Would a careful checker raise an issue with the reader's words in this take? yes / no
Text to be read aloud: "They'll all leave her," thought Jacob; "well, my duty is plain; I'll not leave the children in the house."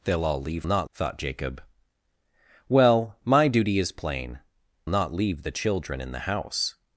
yes